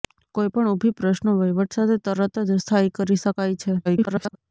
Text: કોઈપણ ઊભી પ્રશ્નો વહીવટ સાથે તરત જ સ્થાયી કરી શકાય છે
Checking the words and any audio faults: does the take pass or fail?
fail